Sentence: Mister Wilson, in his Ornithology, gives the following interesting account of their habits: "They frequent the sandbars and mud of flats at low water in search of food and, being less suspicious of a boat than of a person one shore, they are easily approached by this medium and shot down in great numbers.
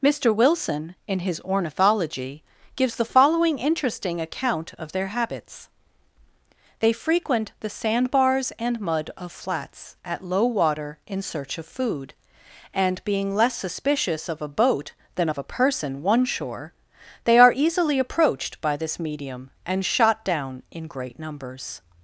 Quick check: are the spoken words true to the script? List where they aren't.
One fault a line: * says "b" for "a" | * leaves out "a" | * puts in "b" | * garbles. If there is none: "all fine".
all fine